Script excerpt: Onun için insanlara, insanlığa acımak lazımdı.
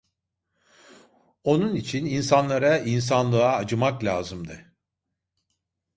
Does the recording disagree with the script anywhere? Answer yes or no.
no